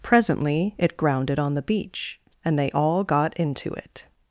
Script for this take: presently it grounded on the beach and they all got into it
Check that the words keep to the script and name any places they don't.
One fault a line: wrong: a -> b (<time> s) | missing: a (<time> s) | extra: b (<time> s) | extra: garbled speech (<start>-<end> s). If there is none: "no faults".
no faults